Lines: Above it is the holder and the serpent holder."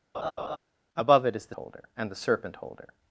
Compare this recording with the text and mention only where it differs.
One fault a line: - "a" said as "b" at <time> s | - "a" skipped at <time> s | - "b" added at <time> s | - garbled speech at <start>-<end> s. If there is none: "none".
none